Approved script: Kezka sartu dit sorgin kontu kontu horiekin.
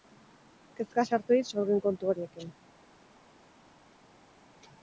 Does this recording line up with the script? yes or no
no